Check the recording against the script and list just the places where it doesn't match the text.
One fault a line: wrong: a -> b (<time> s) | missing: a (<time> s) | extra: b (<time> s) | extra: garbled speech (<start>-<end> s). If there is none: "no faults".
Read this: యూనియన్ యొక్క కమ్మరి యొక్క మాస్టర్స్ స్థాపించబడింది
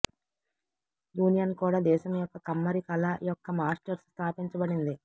extra: కూడా దేశం (1.6 s)
extra: కళ (2.9 s)